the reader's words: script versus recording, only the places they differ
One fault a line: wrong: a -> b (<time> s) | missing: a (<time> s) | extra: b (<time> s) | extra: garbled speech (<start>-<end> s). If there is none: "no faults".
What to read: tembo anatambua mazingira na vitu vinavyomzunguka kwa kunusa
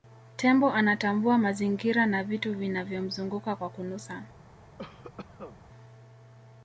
no faults